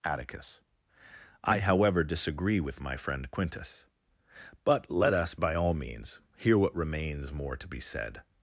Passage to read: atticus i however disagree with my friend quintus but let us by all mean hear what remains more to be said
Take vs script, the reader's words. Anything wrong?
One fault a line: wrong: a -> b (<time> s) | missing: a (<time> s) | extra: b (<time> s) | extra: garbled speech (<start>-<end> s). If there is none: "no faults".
wrong: mean -> means (5.8 s)